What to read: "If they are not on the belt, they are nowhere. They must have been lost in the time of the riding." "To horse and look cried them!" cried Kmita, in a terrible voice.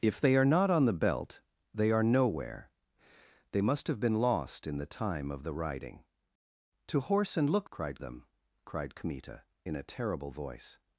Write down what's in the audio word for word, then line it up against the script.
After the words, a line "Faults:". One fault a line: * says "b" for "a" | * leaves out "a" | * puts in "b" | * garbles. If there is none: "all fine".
"If they are not on the belt, they are nowhere. They must have been lost in the time of the riding." "To horse and look cried them!" cried Kmita, in a terrible voice.
Faults:
all fine